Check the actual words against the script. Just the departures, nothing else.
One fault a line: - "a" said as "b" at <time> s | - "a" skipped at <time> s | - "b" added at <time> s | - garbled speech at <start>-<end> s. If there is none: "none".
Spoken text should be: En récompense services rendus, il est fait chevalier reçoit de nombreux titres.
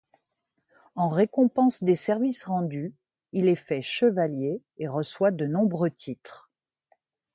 - "des" added at 1.8 s
- "et" added at 4.8 s